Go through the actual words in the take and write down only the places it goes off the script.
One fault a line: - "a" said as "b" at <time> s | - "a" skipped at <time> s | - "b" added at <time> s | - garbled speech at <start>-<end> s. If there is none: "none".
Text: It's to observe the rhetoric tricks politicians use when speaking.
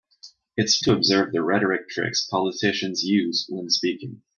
none